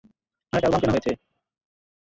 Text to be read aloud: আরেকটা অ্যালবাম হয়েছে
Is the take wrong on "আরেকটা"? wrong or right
right